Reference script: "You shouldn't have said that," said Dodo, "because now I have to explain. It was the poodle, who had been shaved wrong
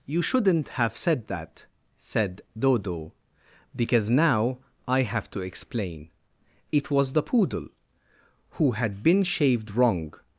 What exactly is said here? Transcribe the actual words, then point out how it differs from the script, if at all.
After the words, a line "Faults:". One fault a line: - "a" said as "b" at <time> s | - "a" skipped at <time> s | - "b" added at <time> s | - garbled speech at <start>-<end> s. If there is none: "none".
"You shouldn't have said that," said Dodo, "because now I have to explain. It was the poodle, who had been shaved wrong
Faults:
none